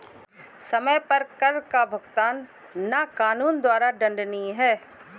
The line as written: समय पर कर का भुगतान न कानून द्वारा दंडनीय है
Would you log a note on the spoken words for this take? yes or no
no